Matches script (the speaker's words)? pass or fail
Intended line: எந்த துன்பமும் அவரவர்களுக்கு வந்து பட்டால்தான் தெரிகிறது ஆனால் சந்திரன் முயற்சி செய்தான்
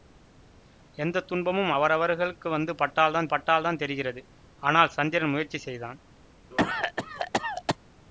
fail